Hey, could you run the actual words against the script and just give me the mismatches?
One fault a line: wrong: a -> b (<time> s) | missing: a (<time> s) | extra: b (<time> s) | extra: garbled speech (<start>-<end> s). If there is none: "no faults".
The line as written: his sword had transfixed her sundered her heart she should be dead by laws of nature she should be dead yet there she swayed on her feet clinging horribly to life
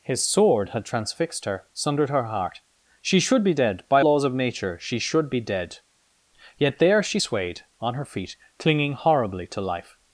no faults